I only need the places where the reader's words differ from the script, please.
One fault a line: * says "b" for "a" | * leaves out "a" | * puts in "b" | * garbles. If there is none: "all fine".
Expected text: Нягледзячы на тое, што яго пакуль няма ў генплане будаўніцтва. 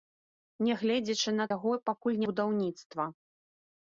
* leaves out "тое што"
* leaves out "няма ў генплане"